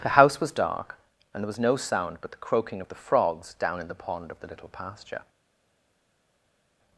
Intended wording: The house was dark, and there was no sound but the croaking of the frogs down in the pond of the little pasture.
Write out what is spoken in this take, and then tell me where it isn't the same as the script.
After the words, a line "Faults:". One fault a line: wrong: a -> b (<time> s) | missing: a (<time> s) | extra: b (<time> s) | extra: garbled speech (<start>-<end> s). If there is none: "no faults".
The house was dark, and there was no sound but the croaking of the frogs down in the pond of the little pasture.
Faults:
no faults